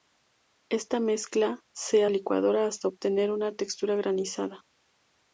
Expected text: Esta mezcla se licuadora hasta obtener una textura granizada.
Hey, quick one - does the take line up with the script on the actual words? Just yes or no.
yes